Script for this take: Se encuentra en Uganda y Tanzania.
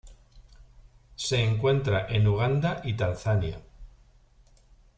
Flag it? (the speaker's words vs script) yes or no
no